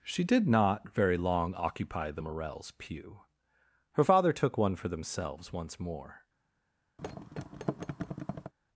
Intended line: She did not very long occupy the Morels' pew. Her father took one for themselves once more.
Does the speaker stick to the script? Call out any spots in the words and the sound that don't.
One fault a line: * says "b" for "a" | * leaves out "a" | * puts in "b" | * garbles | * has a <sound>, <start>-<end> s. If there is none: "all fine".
* has a thud, 7.0-8.5 s